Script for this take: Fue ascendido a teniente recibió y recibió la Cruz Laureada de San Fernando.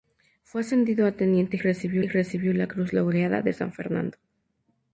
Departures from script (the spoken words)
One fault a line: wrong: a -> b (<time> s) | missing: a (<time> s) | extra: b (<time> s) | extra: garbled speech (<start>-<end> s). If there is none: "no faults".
no faults